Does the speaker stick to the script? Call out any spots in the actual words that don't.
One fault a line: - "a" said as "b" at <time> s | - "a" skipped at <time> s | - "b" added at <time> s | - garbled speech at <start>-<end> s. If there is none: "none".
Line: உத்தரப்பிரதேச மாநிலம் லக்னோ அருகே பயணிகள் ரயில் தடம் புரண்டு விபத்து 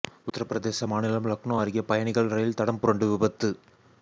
none